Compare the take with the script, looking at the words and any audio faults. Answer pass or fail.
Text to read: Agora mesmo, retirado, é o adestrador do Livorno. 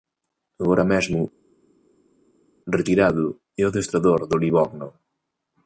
pass